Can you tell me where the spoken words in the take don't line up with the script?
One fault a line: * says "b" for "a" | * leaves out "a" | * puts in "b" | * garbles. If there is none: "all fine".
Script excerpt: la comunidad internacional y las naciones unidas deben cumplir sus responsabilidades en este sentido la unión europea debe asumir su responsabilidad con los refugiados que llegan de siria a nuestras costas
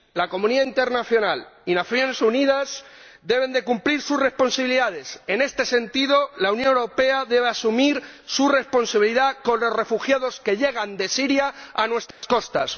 all fine